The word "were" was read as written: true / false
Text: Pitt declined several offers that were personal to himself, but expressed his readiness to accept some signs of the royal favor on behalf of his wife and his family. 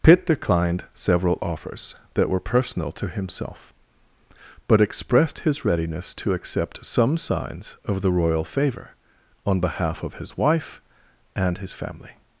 true